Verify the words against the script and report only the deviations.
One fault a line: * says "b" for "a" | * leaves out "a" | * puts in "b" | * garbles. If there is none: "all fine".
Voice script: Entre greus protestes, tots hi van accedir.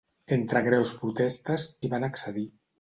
* leaves out "tots"